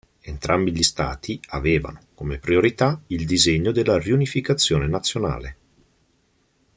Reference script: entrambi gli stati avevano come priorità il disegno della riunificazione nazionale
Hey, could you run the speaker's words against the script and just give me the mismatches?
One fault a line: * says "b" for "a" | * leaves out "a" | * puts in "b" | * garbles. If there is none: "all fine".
all fine